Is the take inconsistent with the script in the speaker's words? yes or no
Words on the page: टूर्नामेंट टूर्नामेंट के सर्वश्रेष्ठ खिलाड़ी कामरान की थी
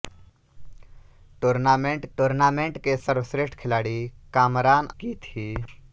no